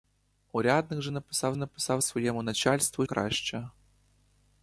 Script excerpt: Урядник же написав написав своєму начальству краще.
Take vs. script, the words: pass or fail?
pass